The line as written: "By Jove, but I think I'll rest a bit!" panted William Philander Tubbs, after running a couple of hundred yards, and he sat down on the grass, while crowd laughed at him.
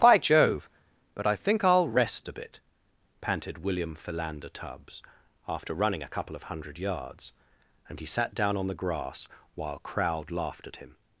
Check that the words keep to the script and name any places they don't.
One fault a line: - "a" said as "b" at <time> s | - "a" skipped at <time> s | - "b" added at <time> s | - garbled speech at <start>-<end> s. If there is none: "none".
none